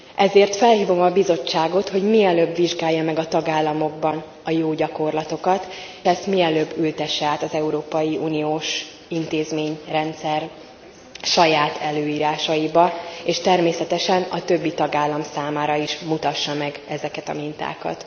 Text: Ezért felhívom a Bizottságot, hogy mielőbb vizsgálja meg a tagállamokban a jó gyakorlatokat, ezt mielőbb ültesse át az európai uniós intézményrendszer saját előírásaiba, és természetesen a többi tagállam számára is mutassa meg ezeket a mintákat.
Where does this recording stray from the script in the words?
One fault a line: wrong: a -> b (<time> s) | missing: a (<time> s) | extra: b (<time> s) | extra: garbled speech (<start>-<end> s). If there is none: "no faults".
no faults